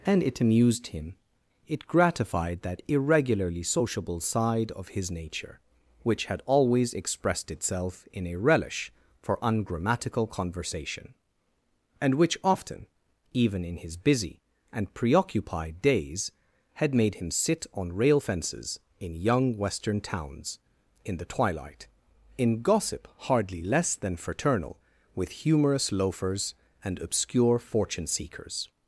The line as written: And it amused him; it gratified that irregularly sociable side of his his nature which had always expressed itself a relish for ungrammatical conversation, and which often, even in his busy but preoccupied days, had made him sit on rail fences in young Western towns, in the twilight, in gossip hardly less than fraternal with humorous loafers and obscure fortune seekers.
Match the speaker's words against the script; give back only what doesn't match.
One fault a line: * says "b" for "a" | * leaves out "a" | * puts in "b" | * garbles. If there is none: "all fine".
* leaves out "his"
* puts in "in"
* says "and" for "but"